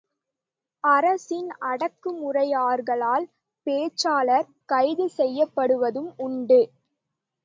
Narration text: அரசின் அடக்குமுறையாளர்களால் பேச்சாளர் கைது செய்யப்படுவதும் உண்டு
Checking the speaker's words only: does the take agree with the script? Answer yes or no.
yes